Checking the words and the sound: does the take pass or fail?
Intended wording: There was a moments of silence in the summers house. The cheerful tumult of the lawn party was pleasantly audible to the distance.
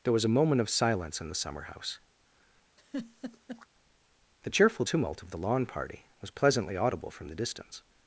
fail